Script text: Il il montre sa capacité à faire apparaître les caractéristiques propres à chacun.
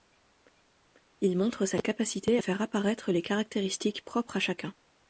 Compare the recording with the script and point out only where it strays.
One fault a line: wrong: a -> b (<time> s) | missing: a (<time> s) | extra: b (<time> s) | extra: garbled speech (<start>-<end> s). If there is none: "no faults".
missing: il (1.4 s)